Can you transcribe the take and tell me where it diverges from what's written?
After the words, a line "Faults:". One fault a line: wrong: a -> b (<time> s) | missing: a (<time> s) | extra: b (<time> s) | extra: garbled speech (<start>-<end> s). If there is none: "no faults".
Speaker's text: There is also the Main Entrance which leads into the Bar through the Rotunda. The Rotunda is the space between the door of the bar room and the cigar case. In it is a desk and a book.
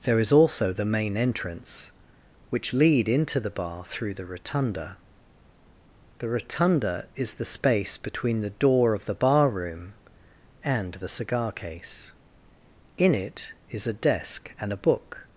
There is also the Main Entrance which lead into the Bar through the Rotunda. The Rotunda is the space between the door of the bar room and the cigar case. In it is a desk and a book.
Faults:
wrong: leads -> lead (2.7 s)